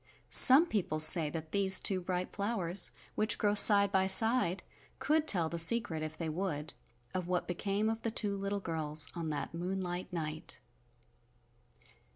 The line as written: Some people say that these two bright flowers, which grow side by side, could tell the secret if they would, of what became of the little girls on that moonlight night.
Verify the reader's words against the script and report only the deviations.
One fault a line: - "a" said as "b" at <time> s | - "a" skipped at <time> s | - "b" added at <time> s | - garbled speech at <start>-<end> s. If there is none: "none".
- "two" added at 8.1 s